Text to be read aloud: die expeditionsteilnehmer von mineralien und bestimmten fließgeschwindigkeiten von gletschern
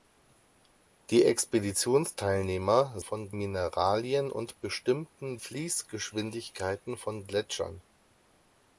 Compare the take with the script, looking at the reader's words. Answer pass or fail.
pass